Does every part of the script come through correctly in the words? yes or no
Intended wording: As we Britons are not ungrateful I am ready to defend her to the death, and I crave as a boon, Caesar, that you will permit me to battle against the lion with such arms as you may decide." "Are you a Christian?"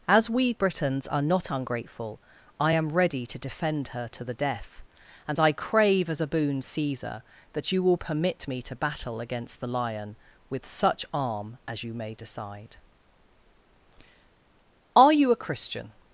no